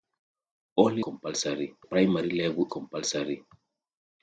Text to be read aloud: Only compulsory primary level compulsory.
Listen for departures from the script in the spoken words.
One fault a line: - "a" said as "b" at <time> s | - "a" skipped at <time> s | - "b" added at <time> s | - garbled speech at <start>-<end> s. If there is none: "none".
none